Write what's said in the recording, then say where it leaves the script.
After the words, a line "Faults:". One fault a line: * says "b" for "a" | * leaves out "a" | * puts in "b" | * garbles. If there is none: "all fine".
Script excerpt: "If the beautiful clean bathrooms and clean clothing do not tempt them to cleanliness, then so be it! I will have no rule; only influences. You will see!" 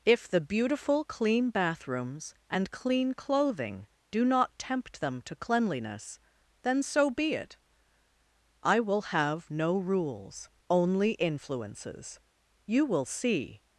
"If the beautiful clean bathrooms and clean clothing do not tempt them to cleanliness, then so be it! I will have no rules; only influences. You will see!"
Faults:
* says "rules" for "rule"